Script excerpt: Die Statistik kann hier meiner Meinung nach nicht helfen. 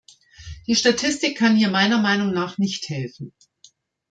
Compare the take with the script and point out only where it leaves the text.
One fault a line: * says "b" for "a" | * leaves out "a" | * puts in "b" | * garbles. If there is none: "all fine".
all fine